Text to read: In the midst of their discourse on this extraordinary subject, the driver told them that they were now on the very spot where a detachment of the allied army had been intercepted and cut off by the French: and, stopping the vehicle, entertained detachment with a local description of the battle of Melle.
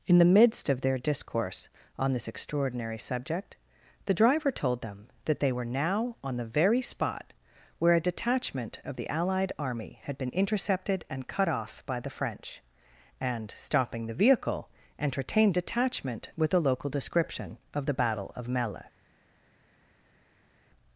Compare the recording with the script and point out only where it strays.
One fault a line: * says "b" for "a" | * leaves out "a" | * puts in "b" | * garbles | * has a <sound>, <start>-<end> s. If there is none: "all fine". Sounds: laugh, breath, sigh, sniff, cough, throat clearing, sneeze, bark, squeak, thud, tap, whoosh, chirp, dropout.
all fine